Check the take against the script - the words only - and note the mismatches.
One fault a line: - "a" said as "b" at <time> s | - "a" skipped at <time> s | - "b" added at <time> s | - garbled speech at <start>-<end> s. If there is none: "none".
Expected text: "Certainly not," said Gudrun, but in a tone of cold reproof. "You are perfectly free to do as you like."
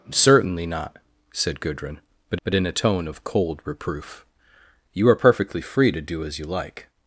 - "but" added at 2.4 s